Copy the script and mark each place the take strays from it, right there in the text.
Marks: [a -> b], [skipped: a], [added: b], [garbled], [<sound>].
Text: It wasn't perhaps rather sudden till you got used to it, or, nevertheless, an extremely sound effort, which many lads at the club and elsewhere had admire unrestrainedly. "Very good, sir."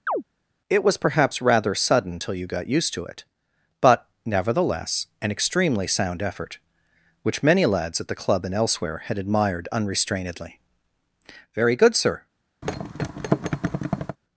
[chirp] It [wasn't -> was] perhaps rather sudden till you got used to it, [or, -> but] nevertheless, an extremely sound effort, which many lads at the club and elsewhere had [admire -> admired] unrestrainedly. "Very good, sir." [thud]